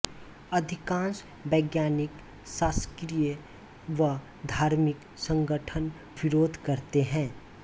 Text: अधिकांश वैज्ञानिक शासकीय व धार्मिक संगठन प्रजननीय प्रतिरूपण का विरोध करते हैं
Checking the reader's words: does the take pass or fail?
fail